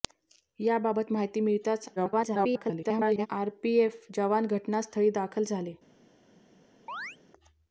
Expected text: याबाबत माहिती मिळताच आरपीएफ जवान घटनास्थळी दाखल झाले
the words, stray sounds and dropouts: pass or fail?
fail